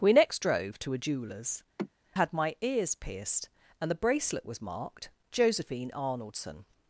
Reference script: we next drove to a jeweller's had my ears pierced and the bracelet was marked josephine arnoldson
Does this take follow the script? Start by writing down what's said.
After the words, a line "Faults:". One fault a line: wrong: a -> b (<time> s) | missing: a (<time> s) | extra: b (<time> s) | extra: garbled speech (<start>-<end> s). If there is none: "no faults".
we next drove to a jeweller's had my ears pierced and the bracelet was marked josephine arnoldson
Faults:
no faults